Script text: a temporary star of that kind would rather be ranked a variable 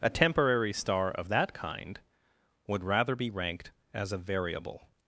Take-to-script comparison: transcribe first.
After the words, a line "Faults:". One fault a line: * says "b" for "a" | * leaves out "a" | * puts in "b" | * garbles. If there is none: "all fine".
a temporary star of that kind would rather be ranked as a variable
Faults:
* puts in "as"